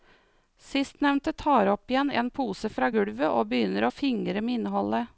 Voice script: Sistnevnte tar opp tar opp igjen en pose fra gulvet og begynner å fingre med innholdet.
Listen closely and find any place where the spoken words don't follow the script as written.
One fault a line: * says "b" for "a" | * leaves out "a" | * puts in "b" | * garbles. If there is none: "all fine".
* leaves out "tar opp"